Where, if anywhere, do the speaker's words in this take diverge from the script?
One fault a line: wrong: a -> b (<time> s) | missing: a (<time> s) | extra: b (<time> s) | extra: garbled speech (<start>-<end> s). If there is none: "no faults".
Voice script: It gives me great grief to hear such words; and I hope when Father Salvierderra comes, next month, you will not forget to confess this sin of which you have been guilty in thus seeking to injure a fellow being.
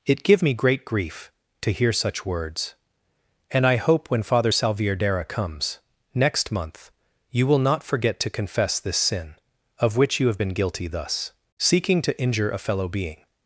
wrong: gives -> give (0.2 s)
missing: in (10.9 s)